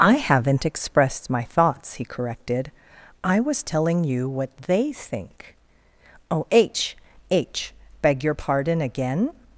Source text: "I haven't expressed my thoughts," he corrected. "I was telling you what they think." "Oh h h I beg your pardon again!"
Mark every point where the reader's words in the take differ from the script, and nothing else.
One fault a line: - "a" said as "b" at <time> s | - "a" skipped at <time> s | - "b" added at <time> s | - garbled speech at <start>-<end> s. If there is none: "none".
- "I" skipped at 7.7 s